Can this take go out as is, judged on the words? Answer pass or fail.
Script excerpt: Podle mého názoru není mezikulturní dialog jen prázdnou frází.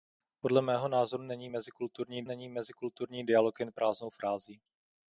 fail